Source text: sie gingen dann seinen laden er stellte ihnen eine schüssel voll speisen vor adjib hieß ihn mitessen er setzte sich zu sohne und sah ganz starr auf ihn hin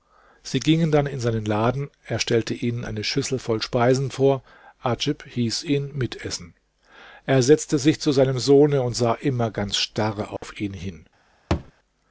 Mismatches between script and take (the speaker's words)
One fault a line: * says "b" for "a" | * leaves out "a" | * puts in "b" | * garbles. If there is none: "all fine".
* puts in "in"
* puts in "seinem"
* puts in "immer"